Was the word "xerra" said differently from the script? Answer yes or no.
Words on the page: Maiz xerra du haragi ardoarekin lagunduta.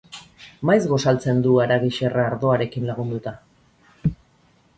yes